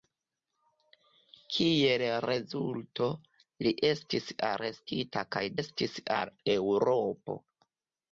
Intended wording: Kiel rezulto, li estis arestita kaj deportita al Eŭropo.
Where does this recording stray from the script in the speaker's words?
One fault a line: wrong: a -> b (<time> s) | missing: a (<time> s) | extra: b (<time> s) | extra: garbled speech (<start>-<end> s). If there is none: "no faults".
wrong: deportita -> estis (5.6 s)